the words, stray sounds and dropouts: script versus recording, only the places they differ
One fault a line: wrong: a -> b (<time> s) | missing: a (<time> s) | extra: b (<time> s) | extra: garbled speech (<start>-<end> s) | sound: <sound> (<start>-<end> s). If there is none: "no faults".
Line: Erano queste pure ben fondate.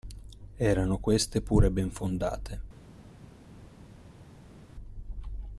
no faults